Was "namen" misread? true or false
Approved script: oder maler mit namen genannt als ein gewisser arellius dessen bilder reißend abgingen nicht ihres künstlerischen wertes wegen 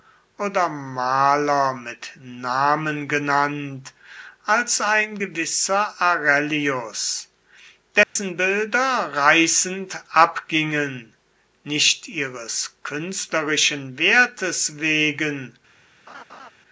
false